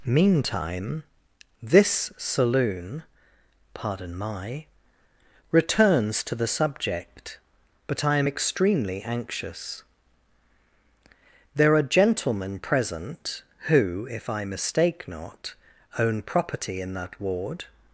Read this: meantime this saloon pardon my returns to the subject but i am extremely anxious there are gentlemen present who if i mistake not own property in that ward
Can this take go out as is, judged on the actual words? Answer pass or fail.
pass